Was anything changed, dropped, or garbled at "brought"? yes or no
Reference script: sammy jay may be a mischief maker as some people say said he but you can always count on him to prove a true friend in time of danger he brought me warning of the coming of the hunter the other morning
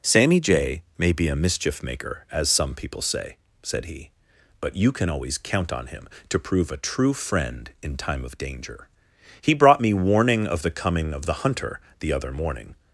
no